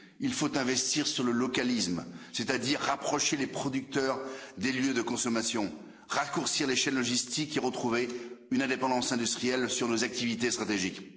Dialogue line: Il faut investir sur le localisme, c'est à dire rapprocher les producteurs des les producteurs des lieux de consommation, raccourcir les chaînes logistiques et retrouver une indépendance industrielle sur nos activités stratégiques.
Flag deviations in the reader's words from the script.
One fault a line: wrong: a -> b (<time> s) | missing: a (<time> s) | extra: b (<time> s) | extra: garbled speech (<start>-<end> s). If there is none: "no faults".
missing: les producteurs des (4.7 s)